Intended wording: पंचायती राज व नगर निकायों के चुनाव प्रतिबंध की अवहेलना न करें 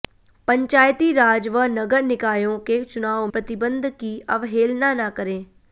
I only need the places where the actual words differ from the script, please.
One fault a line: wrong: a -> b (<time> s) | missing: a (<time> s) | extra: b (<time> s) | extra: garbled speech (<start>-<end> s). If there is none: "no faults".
no faults